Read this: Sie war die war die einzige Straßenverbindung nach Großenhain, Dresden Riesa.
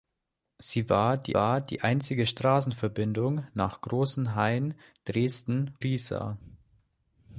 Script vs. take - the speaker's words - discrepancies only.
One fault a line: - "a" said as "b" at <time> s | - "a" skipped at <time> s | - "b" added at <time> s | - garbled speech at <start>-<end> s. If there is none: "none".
none